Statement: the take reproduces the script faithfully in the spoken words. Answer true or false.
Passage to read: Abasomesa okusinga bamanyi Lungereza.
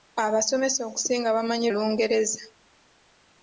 true